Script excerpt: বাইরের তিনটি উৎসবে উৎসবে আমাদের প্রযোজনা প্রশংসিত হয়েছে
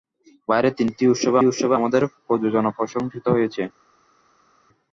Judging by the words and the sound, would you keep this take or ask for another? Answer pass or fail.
pass